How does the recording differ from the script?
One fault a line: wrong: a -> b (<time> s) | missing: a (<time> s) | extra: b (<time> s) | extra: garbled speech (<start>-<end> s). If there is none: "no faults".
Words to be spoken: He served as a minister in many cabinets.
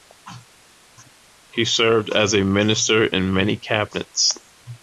no faults